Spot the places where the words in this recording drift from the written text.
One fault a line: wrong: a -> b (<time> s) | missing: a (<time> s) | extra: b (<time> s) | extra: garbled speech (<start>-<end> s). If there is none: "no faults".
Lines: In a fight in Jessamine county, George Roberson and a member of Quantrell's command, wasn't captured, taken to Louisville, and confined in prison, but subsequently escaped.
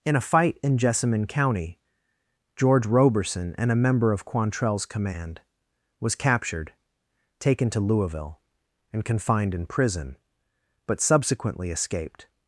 wrong: wasn't -> was (6.0 s)